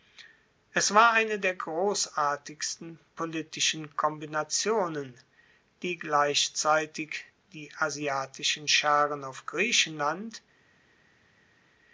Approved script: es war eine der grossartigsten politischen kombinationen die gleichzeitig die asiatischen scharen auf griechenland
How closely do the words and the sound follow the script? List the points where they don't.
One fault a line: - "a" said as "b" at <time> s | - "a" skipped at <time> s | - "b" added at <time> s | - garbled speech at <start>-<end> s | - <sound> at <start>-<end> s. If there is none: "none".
none